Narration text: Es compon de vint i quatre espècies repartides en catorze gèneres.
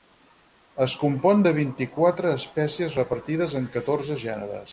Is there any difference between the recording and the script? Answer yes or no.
no